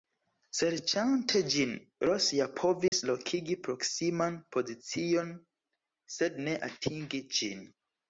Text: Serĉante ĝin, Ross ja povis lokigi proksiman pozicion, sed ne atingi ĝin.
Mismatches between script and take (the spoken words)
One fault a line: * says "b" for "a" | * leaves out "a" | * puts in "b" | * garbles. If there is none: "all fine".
all fine